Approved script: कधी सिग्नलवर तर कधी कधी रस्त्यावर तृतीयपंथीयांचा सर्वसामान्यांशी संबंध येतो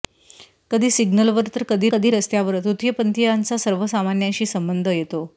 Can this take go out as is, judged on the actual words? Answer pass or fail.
pass